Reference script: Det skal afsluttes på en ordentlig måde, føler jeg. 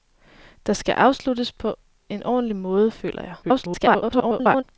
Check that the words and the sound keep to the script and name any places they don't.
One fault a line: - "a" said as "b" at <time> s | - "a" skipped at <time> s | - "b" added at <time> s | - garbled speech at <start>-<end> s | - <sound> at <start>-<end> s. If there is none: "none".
- garbled speech at 3.4-4.6 s